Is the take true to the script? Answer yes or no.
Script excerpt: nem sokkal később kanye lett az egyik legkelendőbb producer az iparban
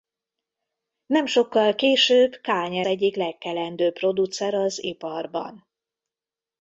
no